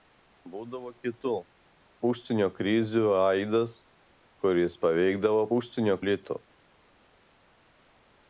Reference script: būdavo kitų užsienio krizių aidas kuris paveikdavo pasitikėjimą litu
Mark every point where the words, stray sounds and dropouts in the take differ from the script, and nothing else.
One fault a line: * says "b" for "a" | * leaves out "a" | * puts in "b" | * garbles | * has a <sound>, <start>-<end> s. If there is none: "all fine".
* says "užsienio" for "pasitikėjimą"